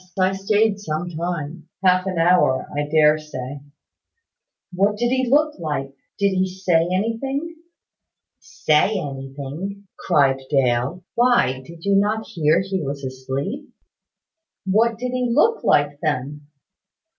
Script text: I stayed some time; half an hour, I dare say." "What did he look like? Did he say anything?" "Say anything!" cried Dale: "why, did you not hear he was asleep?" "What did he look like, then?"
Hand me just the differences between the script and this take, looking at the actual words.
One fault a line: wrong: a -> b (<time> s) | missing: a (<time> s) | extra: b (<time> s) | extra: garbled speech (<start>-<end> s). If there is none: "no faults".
no faults